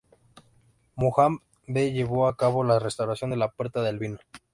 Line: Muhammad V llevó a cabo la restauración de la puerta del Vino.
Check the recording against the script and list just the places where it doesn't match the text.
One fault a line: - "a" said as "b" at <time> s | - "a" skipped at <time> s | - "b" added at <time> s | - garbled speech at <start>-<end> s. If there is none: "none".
none